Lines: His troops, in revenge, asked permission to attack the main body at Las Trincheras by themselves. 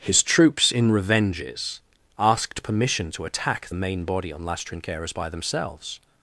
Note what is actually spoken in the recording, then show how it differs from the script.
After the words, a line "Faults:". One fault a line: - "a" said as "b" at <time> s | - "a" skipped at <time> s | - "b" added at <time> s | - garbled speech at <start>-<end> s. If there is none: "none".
His troops, in revenges, asked permission to attack the main body on Las Trincheras by themselves.
Faults:
- "revenge" said as "revenges" at 0.9 s
- "at" said as "on" at 4.3 s